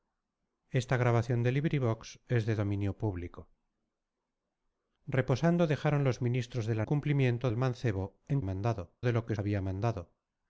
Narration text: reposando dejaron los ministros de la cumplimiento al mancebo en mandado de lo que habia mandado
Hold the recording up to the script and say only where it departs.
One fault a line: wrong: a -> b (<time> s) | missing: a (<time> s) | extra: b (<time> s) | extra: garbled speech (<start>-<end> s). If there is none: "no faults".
no faults